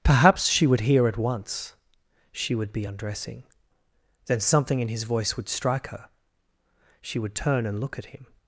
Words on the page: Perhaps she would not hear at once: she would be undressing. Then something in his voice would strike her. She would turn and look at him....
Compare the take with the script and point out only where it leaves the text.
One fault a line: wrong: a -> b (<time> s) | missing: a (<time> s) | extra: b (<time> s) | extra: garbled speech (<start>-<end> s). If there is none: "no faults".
missing: not (0.8 s)